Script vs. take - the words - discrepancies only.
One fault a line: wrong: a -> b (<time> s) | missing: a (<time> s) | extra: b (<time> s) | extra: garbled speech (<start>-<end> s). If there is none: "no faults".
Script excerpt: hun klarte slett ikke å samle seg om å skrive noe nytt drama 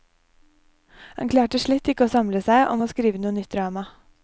wrong: hun -> han (1.2 s)